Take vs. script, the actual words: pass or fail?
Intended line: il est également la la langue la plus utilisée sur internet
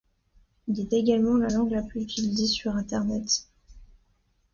fail